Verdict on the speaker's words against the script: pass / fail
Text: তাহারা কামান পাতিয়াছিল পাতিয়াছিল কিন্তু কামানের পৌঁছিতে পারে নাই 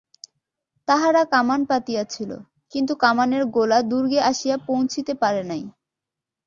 fail